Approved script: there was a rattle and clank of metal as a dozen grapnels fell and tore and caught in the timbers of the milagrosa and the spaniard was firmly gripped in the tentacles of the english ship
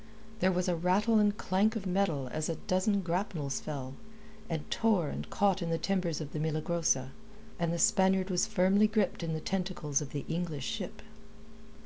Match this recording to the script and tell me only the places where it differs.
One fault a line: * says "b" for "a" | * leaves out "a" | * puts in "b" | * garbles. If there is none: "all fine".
all fine